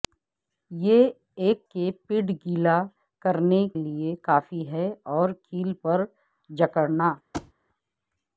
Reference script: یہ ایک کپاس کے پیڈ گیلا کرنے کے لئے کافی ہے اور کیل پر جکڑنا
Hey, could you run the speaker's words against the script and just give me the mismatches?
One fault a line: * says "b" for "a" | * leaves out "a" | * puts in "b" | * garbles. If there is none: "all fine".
* leaves out "کپاس"
* leaves out "کے"